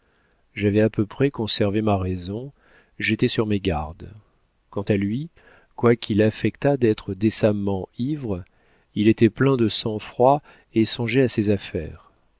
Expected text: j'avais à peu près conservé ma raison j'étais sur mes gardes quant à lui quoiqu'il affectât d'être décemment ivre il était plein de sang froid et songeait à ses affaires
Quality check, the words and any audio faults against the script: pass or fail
pass